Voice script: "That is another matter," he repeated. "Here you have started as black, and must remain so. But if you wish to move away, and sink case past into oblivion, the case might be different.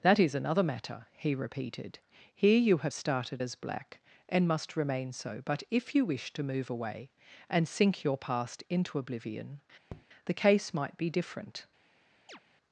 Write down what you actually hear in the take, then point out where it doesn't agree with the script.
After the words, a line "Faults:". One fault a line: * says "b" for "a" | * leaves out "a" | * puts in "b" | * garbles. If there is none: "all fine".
"That is another matter," he repeated. "Here you have started as black, and must remain so. But if you wish to move away, and sink your past into oblivion, the case might be different.
Faults:
* says "your" for "case"